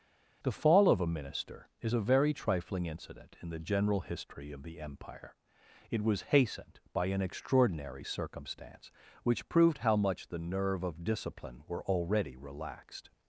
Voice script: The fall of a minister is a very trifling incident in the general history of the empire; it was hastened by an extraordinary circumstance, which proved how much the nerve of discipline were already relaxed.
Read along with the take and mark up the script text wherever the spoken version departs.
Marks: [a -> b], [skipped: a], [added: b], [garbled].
The fall of a minister is a very trifling incident in the general history of the empire; it was hastened by an extraordinary circumstance, which proved how much the nerve of discipline were already relaxed.